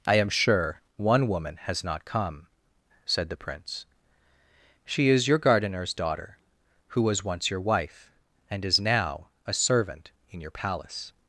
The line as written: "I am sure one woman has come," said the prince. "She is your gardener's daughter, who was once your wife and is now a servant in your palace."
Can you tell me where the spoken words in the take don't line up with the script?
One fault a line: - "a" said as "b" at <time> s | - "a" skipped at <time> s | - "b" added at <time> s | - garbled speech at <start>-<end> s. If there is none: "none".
- "not" added at 1.8 s